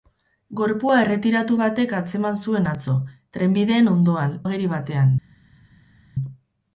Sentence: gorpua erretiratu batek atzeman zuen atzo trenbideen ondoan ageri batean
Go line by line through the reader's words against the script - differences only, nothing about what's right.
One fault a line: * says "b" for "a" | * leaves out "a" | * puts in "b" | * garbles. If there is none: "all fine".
all fine